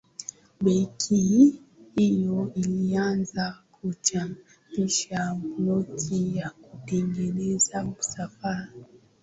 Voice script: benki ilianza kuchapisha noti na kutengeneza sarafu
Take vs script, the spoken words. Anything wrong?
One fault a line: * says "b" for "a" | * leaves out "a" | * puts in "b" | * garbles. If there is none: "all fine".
* puts in "hiyo"